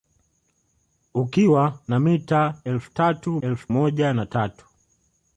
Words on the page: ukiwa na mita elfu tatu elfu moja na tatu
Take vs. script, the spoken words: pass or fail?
pass